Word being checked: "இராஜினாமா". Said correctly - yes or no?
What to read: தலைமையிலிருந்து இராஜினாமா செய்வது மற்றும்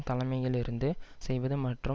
no